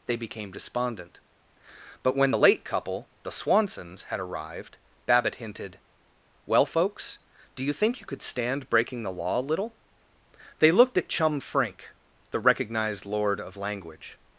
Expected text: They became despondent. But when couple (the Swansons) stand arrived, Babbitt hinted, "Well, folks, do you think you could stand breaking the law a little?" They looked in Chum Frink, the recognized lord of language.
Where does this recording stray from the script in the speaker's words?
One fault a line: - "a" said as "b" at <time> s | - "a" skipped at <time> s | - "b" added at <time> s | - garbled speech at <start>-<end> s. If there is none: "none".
- "the late" added at 2.3 s
- "stand" said as "had" at 4.0 s
- "in" said as "at" at 11.0 s